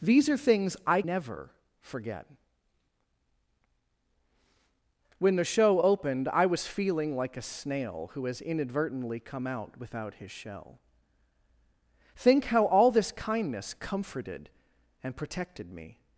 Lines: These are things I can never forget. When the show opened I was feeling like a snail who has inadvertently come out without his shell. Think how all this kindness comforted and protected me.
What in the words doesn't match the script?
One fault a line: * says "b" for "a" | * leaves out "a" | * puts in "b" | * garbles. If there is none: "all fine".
* leaves out "can"